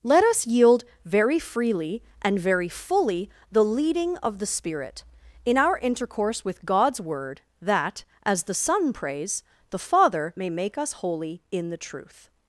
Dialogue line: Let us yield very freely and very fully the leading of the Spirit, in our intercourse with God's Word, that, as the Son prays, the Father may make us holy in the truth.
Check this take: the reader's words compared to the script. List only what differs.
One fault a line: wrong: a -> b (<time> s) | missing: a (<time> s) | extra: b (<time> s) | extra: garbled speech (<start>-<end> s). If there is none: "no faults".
no faults